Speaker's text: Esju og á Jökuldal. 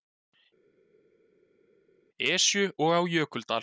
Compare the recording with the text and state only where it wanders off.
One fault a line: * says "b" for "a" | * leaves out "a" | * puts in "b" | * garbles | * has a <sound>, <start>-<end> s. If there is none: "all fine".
all fine